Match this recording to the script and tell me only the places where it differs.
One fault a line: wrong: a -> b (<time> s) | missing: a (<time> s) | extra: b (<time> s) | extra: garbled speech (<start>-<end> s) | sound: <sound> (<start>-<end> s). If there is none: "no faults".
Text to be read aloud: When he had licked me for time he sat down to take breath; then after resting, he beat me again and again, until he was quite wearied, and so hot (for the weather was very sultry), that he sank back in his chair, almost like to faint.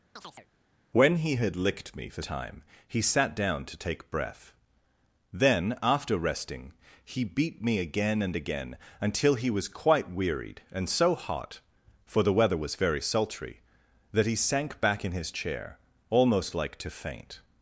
sound: chirp (0.2-0.5 s)